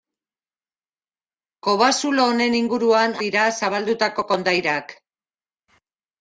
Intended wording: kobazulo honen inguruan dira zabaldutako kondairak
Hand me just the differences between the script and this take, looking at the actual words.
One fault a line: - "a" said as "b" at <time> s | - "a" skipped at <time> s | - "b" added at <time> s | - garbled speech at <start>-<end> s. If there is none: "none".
none